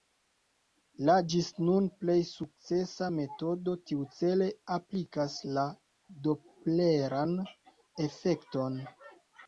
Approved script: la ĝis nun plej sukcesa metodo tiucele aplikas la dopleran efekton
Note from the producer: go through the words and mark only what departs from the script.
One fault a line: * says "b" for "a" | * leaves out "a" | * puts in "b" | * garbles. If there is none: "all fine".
all fine